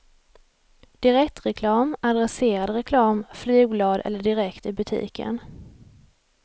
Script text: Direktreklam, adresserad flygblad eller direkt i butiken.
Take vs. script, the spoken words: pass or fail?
fail